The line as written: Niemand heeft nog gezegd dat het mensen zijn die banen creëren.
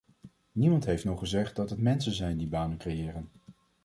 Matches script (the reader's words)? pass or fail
pass